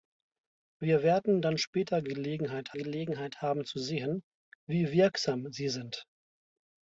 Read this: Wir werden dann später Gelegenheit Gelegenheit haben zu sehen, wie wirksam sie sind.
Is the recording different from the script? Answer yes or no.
no